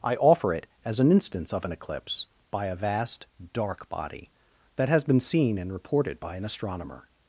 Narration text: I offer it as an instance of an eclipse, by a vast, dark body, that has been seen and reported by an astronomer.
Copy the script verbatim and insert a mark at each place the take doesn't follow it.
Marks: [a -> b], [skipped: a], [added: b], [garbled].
I offer it as an instance of an eclipse, by a vast, dark body, that has been seen and reported by an astronomer.